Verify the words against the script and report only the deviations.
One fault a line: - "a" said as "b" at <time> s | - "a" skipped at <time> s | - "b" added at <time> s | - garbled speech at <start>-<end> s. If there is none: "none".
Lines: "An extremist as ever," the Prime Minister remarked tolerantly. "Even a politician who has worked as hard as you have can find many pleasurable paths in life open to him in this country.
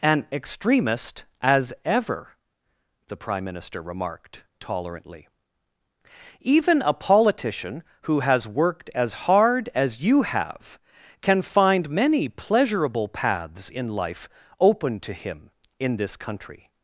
none